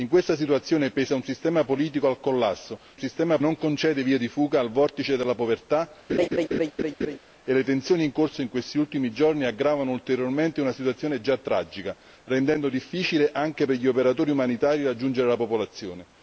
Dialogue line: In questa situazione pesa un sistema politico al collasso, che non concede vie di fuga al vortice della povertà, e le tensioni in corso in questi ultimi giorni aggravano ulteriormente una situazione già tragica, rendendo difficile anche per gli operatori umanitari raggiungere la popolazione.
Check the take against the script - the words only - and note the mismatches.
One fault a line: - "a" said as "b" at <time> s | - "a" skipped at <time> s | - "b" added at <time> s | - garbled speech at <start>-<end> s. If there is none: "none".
- "che" said as "sistema" at 3.0 s